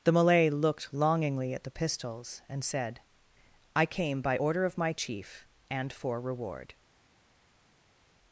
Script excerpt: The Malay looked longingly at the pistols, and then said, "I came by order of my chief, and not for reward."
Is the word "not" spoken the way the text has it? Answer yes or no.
no